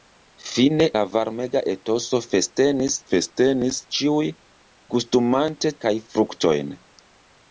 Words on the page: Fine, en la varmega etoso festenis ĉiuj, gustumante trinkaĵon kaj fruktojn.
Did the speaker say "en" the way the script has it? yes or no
no